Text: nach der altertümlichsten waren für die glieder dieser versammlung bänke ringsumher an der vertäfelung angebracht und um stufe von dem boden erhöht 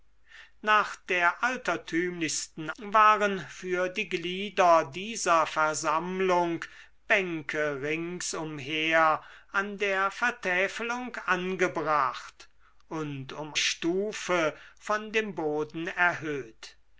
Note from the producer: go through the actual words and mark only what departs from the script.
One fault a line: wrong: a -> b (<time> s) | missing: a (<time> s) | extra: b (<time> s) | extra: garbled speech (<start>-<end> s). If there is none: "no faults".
no faults